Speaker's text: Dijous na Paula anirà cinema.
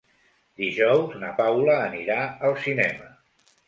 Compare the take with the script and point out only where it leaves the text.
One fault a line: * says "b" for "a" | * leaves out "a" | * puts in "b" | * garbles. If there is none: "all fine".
* puts in "al"